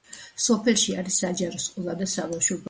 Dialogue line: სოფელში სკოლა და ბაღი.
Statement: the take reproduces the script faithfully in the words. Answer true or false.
false